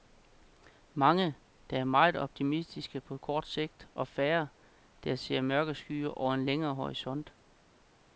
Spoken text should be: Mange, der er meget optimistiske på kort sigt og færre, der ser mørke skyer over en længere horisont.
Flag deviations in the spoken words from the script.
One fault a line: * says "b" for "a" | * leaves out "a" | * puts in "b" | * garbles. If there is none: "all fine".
all fine